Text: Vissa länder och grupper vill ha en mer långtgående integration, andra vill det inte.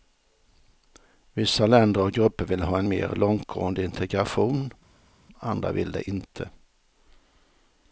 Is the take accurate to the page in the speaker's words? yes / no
yes